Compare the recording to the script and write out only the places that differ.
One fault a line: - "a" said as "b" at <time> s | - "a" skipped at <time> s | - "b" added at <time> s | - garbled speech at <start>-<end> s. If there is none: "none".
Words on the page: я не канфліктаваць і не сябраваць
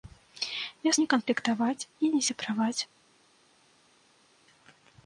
none